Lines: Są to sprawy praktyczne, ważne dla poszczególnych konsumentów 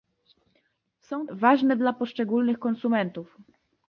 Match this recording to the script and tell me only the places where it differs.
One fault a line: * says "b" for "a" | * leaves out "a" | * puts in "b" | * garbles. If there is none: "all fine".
* leaves out "to sprawy praktyczne"